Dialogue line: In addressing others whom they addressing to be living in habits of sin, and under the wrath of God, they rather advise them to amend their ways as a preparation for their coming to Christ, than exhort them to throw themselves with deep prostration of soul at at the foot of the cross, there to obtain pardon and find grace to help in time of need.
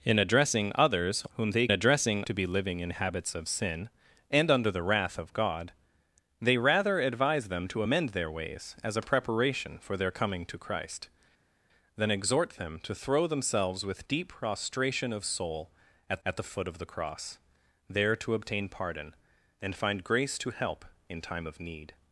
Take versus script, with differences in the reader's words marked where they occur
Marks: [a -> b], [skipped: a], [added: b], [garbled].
In addressing others whom they addressing to be living in habits of sin, and under the wrath of God, they rather advise them to amend their ways as a preparation for their coming to Christ, than exhort them to throw themselves with deep prostration of soul at at the foot of the cross, there to obtain pardon and find grace to help in time of need.